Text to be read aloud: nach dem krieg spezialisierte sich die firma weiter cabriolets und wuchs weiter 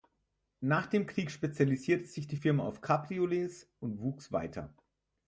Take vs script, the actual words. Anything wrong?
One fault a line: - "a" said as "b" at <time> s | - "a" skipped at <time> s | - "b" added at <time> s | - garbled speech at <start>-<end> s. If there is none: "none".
- "weiter" said as "auf" at 2.6 s